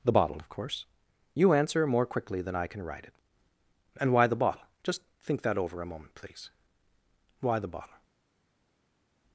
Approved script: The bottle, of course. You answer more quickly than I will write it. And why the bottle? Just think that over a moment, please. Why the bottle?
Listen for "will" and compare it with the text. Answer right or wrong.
wrong